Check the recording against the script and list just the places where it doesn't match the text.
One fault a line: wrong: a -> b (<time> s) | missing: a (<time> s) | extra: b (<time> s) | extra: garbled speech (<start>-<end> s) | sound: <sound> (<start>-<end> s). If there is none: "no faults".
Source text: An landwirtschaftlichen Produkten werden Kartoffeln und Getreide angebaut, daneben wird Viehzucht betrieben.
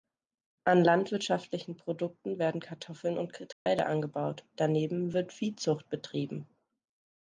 sound: dropout (3.5-3.7 s)